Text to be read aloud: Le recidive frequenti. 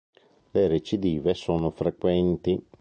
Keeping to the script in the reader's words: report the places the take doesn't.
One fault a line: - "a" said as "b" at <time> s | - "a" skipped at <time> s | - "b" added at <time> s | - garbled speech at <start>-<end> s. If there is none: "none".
- "sono" added at 1.4 s